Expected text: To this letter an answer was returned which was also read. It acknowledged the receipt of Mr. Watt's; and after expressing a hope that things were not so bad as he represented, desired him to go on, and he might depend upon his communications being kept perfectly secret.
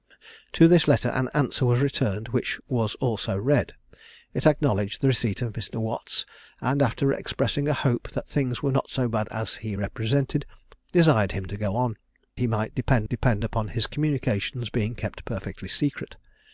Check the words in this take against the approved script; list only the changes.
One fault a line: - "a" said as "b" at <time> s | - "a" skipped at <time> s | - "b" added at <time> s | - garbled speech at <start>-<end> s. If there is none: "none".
- "and" skipped at 12.0 s
- "depend" added at 13.1 s